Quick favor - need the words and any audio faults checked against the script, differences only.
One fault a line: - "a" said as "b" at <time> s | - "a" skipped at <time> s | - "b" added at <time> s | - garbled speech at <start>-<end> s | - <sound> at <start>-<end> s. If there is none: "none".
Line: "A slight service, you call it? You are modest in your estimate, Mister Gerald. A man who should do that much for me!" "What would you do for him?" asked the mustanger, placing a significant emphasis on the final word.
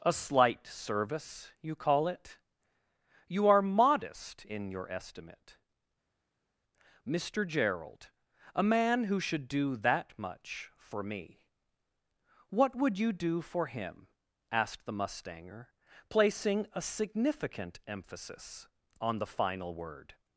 none